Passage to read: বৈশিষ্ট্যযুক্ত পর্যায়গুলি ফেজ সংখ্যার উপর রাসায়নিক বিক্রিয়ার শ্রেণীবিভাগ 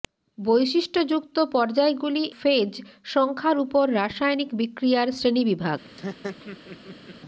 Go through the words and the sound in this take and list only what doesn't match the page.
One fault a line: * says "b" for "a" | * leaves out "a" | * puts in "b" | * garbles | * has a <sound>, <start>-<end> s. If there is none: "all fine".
* has a laugh, 5.8-7.2 s